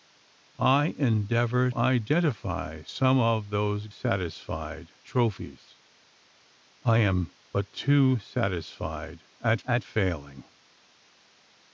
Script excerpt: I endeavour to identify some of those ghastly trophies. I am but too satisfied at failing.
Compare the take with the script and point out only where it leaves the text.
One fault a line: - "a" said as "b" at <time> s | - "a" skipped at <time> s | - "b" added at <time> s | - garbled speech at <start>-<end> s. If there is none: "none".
- "to" skipped at 1.7 s
- "ghastly" said as "satisfied" at 3.9 s
- "at" added at 9.6 s